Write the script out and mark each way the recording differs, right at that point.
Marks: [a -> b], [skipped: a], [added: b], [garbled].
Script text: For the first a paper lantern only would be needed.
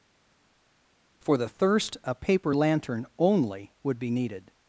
For the [first -> thirst] a paper lantern only would be needed.